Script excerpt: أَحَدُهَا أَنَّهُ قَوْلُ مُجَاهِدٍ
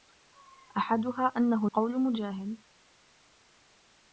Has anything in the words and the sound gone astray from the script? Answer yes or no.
no